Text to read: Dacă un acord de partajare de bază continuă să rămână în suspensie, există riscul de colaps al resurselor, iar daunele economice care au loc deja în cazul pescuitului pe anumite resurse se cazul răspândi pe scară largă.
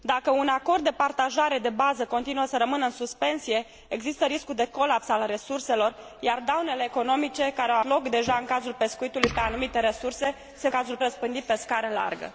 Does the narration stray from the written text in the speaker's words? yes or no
no